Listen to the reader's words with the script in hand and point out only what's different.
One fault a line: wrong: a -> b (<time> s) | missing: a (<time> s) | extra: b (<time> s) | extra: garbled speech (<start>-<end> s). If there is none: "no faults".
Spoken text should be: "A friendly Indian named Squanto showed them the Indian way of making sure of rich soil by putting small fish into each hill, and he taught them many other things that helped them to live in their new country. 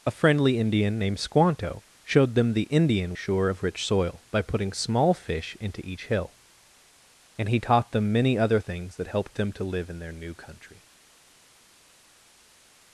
missing: way of making (3.1 s)